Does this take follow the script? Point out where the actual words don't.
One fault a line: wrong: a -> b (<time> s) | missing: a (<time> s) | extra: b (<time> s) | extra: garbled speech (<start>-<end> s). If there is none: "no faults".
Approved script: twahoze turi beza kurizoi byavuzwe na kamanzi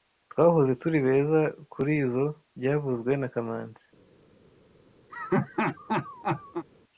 no faults